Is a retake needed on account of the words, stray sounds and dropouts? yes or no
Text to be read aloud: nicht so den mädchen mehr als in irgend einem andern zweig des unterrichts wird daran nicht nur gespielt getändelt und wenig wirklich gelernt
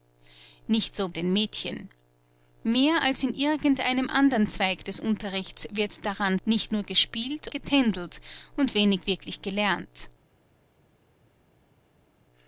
no